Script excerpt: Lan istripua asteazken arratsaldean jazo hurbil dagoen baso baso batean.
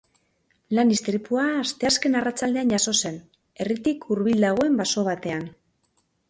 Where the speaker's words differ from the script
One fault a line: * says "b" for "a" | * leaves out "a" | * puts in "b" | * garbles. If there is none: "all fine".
* puts in "zen herritik"
* leaves out "baso"